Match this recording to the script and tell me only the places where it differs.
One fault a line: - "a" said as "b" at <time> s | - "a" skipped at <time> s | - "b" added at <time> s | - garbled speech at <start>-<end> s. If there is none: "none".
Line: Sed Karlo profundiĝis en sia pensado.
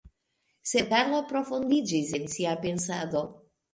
none